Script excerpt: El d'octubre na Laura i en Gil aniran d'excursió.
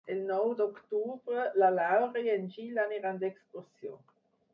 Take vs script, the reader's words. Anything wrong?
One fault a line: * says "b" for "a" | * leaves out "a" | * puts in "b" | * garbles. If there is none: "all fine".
* puts in "nou"